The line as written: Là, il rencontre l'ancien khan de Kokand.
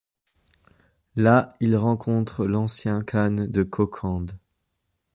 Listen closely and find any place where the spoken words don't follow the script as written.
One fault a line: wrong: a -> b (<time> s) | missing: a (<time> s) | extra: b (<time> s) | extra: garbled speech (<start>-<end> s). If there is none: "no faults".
no faults